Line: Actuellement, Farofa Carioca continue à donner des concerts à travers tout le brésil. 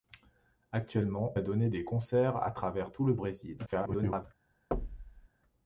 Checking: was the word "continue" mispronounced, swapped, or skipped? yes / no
yes